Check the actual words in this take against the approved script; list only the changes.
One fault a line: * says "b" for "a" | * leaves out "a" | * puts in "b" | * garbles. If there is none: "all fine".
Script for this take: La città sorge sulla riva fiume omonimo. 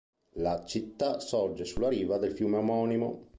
* puts in "del"